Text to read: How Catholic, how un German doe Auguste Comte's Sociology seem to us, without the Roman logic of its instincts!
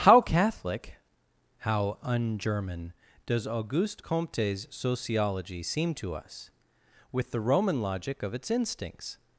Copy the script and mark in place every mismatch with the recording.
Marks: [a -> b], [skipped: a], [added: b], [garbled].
How Catholic, how un German [doe -> does] Auguste Comte's Sociology seem to us, [without -> with] the Roman logic of its instincts!